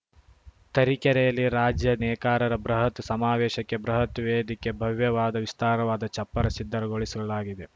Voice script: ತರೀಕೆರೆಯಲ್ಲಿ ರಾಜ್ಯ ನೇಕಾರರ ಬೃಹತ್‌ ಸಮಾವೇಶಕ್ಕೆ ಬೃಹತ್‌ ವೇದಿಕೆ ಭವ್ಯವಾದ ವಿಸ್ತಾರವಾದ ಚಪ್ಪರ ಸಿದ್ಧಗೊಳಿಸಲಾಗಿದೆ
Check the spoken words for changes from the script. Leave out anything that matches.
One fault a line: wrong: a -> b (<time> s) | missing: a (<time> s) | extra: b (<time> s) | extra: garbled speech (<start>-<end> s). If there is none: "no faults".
no faults